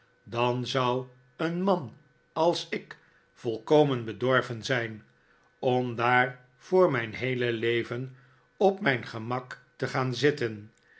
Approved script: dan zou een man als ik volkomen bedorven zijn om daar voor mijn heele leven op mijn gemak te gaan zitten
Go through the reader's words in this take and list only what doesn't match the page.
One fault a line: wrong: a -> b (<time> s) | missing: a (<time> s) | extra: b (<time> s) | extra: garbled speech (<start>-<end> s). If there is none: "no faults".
no faults